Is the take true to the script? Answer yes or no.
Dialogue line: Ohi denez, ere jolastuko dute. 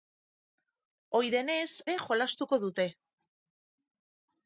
yes